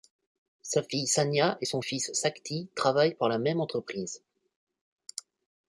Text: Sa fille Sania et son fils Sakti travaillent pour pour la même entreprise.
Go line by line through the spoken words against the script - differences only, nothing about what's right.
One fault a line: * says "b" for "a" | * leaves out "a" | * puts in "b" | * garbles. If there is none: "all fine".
* leaves out "pour"